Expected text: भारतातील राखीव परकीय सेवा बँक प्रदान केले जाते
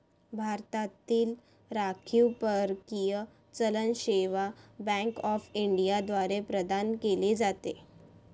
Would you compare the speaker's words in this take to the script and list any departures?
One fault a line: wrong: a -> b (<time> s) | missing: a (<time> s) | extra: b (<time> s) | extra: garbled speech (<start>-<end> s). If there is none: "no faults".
extra: चलन (3.5 s)
extra: ऑफ इंडिया द्वारे (5.2 s)